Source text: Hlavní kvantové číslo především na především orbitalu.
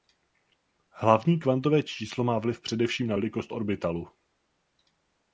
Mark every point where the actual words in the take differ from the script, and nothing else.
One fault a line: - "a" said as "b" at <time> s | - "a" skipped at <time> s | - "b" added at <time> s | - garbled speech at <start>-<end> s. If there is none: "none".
- "má vliv" added at 2.2 s
- "především" said as "velikost" at 3.1 s